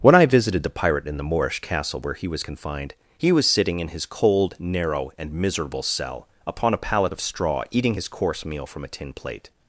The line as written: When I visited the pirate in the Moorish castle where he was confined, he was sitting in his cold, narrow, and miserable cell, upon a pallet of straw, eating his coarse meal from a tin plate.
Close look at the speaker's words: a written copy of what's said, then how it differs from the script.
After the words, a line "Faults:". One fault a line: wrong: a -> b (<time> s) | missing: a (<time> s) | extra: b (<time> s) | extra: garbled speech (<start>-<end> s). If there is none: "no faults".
When I visited the pirate in the Moorish castle where he was confined, he was sitting in his cold, narrow, and miserable cell, upon a pallet of straw, eating his coarse meal from a tin plate.
Faults:
no faults